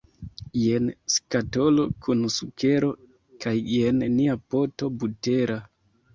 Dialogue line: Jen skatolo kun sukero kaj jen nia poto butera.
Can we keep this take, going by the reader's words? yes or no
yes